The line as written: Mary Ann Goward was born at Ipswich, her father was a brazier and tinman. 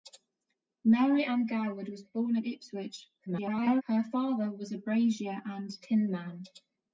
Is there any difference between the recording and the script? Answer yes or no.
yes